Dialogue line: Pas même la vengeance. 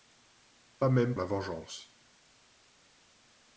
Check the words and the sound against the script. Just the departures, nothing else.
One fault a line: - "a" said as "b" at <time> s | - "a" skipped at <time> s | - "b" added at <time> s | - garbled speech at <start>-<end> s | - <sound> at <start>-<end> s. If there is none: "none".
none